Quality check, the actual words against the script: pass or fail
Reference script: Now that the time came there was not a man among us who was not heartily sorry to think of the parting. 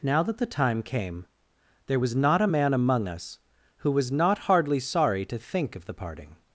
fail